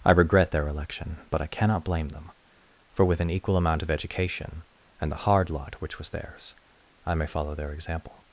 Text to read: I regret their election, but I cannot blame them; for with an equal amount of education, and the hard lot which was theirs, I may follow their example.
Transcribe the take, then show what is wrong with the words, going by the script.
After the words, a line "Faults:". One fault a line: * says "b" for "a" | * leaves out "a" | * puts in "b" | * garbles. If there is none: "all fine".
I regret their election, but I cannot blame them; for with an equal amount of education, and the hard lot which was theirs, I may follow their example.
Faults:
all fine